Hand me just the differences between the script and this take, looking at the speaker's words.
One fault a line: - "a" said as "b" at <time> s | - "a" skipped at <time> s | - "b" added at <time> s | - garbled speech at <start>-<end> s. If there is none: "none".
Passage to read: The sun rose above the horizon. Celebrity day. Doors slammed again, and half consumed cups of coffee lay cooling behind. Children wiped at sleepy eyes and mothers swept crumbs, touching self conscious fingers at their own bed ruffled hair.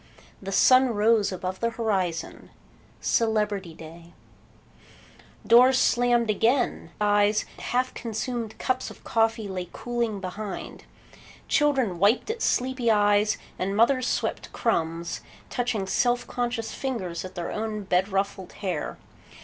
- "and" said as "eyes" at 7.0 s